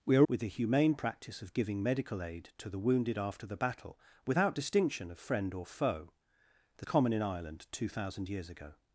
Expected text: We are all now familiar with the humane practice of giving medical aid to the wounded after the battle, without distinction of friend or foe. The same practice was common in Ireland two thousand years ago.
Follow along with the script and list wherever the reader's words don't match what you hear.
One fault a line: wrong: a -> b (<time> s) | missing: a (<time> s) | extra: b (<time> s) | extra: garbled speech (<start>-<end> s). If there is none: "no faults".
missing: all now familiar (0.2 s)
missing: same practice was (6.9 s)